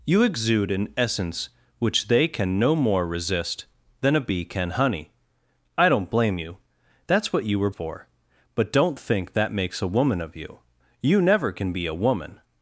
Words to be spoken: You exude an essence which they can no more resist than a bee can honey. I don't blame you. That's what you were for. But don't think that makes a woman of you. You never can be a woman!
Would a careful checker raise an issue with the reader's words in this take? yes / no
no